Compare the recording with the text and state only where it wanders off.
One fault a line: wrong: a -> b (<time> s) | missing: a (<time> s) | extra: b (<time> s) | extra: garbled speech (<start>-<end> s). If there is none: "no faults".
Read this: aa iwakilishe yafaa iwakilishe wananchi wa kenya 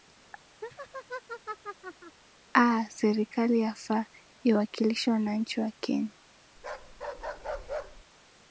wrong: iwakilishe -> serikali (2.9 s)